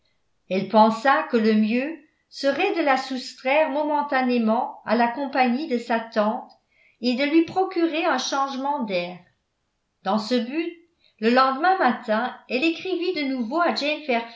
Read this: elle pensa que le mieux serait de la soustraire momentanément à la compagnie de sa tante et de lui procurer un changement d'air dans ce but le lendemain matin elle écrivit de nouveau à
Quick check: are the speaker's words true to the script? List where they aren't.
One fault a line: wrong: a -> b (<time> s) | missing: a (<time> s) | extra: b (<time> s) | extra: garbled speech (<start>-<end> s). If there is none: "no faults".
no faults